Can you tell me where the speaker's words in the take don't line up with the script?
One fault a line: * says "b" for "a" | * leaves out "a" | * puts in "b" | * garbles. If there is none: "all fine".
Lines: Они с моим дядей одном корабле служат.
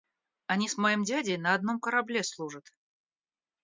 * puts in "на"